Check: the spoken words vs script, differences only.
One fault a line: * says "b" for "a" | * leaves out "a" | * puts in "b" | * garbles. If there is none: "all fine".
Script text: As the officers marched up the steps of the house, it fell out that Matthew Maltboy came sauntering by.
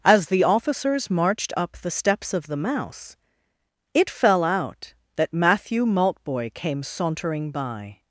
* says "mouse" for "house"